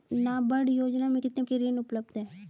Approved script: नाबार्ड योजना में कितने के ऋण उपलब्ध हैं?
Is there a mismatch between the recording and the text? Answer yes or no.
no